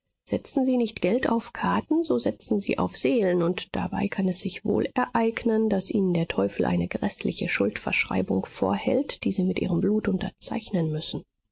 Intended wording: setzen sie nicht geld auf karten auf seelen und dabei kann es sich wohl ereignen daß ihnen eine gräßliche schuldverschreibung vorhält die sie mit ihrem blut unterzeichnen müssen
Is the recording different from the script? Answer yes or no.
yes